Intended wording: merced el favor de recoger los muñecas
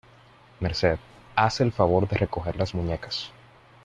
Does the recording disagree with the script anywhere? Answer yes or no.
yes